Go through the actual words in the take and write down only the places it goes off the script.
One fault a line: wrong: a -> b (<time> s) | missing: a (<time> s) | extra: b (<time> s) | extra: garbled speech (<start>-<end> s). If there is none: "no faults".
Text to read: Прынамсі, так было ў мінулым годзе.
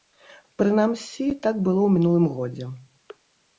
no faults